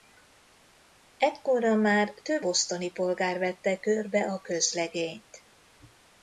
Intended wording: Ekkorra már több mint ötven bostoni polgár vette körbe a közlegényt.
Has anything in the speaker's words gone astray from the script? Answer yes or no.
yes